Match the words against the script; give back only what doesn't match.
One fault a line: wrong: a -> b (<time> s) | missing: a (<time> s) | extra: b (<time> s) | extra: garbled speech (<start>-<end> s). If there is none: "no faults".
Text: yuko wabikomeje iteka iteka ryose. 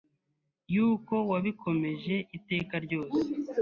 missing: iteka (2.7 s)